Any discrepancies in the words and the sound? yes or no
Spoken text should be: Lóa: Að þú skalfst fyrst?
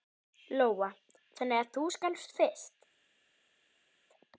yes